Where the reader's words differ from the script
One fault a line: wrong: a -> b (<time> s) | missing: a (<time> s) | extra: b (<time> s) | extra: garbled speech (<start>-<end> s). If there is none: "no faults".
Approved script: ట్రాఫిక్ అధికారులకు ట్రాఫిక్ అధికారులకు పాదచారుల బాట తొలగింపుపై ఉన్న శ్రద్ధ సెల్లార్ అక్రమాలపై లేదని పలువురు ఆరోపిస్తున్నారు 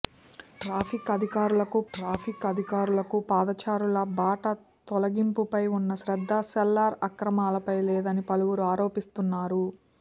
no faults